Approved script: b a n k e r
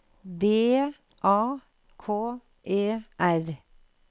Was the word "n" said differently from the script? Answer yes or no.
yes